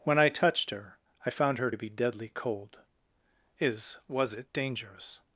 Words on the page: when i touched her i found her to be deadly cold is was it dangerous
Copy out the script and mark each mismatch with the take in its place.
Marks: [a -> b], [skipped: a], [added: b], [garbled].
when i touched her i found her to be deadly cold is was it dangerous